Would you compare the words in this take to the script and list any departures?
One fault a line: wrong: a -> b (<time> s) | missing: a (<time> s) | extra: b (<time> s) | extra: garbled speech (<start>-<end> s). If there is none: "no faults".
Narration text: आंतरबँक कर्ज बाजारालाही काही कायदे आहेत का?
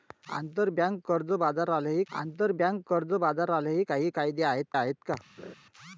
extra: आंतरबँक कर्ज बाजारालाही (2.1 s)
extra: आहेत (4.7 s)